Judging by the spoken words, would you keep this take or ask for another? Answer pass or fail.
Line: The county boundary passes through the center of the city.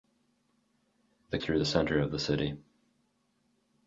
fail